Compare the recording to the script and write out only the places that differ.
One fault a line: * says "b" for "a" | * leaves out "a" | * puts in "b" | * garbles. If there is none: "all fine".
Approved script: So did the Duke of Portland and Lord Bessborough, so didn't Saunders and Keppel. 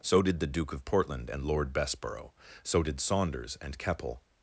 * says "did" for "didn't"